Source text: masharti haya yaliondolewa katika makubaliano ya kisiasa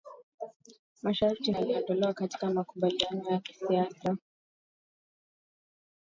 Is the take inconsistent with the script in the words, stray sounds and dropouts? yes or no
yes